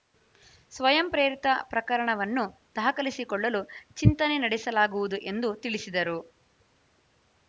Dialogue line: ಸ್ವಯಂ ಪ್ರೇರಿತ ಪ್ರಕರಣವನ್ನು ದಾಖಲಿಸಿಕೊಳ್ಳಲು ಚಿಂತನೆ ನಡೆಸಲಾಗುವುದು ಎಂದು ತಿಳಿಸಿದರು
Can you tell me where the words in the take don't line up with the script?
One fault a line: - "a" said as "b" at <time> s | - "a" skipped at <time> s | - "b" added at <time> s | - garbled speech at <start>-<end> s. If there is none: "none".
none